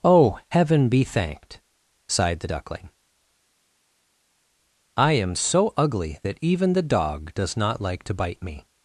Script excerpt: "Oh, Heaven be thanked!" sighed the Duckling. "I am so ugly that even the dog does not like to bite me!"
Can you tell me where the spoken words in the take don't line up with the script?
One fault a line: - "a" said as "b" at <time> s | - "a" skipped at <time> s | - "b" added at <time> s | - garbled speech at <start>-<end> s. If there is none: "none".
none